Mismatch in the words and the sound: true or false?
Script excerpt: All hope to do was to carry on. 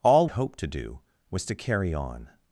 false